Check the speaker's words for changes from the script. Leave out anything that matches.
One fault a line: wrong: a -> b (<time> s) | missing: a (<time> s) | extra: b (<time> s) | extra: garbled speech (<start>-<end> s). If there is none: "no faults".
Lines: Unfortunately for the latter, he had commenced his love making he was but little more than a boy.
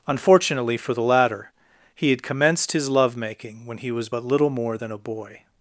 extra: when (3.6 s)